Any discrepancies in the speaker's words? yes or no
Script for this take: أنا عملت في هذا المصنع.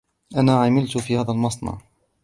no